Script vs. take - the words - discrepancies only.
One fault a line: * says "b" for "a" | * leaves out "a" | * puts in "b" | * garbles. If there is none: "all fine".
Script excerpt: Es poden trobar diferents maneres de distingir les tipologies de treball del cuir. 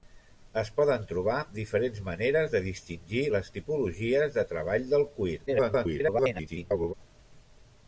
* garbles